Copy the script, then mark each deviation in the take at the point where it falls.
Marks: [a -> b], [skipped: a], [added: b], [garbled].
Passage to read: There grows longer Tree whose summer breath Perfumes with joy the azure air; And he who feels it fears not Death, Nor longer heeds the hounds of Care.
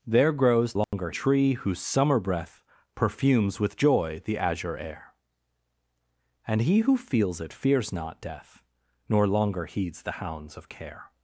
There grows longer Tree whose summer breath Perfumes with joy the azure air; And he who feels it fears not Death, Nor longer heeds the hounds of Care.